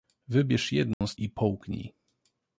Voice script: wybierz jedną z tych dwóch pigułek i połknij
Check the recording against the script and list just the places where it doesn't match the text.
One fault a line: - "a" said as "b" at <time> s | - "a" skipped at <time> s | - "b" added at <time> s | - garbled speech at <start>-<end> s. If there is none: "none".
- "tych dwóch pigułek" skipped at 1.1 s